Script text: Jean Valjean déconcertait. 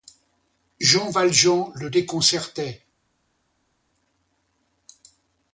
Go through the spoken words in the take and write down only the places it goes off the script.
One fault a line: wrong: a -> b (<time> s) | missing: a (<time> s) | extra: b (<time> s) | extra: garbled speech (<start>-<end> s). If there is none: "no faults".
extra: le (1.8 s)